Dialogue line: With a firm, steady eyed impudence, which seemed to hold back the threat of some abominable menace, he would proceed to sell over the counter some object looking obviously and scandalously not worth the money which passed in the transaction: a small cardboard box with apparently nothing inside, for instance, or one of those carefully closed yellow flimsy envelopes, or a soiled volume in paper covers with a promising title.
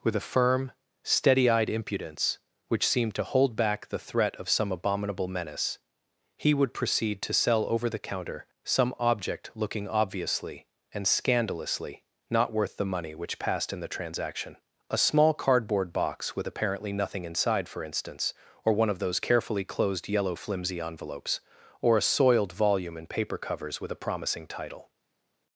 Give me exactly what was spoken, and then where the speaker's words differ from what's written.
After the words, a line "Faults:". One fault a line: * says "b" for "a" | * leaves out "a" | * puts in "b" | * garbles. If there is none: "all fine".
With a firm, steady eyed impudence, which seemed to hold back the threat of some abominable menace, he would proceed to sell over the counter some object looking obviously and scandalously not worth the money which passed in the transaction: a small cardboard box with apparently nothing inside, for instance, or one of those carefully closed yellow flimsy envelopes, or a soiled volume in paper covers with a promising title.
Faults:
all fine